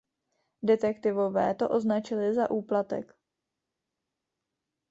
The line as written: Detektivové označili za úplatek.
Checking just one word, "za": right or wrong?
right